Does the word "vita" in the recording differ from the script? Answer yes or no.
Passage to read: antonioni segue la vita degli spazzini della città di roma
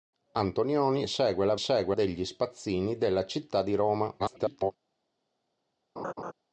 yes